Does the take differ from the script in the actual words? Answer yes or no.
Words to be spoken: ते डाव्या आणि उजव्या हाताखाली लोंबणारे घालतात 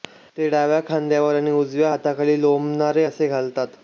yes